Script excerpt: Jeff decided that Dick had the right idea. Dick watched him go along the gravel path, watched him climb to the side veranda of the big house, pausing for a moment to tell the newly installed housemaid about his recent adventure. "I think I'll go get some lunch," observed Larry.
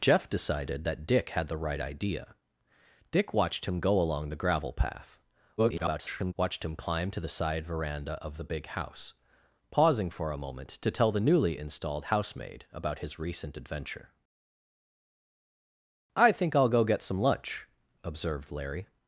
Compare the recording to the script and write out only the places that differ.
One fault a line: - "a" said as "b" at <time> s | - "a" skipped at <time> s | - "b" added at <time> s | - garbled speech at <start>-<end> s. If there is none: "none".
- garbled speech at 5.6-6.3 s